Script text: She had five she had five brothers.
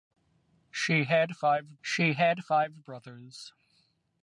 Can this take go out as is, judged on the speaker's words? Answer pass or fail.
pass